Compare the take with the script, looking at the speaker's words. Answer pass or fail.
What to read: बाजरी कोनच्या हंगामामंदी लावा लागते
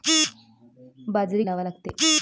fail